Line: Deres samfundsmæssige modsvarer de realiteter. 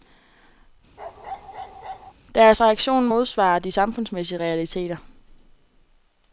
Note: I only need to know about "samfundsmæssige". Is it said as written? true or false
false